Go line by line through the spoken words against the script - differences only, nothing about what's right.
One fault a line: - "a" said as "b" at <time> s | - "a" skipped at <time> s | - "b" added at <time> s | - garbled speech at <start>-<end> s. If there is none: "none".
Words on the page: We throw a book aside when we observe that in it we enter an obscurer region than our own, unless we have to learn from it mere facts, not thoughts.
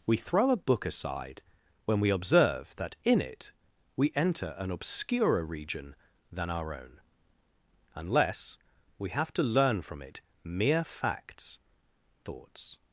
- "not" skipped at 11.6 s